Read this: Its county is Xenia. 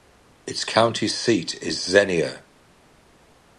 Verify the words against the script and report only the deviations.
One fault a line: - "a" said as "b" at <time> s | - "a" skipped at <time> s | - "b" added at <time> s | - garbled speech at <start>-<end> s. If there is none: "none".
- "seat" added at 1.1 s